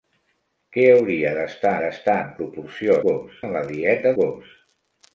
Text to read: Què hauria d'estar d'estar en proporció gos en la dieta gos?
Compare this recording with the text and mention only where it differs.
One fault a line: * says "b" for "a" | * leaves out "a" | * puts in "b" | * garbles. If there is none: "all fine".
all fine